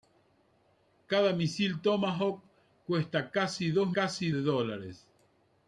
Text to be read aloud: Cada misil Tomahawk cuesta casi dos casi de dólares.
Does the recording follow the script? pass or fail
pass